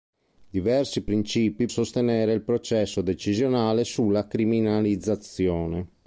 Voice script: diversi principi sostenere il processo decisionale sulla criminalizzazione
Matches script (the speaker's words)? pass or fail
pass